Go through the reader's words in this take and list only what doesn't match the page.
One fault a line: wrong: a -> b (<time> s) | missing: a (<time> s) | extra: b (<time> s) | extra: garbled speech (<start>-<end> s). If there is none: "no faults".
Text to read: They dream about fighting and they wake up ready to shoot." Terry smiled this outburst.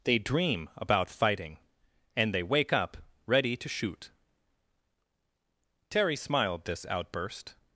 no faults